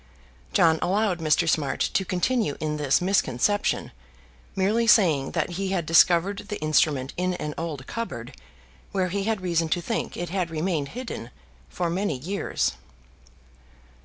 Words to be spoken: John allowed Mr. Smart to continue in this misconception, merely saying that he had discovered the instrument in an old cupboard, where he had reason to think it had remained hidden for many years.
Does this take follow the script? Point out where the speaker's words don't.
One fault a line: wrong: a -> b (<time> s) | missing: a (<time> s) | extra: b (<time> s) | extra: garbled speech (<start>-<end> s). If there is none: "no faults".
no faults